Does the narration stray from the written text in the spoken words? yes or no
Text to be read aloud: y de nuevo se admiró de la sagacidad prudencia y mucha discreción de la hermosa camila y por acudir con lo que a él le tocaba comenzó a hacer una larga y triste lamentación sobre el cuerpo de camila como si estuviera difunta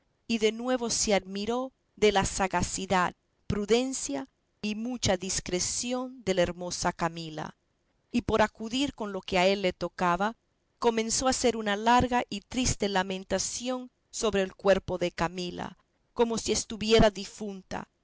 no